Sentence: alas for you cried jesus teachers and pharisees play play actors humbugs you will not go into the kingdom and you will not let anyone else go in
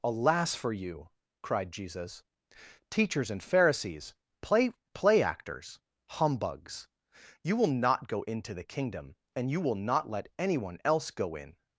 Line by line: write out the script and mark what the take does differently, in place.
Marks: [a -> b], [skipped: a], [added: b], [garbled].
alas for you cried jesus teachers and pharisees play play actors humbugs you will not go into the kingdom and you will not let anyone else go in